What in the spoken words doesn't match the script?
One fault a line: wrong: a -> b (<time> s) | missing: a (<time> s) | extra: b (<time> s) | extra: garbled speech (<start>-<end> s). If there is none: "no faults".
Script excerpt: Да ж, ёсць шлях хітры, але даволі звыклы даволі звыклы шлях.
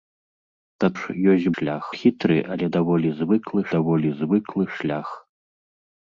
no faults